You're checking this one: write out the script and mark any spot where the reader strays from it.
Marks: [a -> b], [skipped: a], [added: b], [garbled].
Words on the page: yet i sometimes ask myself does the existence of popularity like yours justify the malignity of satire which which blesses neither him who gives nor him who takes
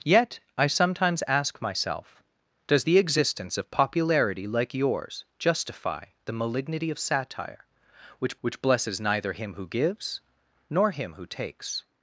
yet i sometimes ask myself does the existence of popularity like yours justify the malignity of satire which which blesses neither him who gives nor him who takes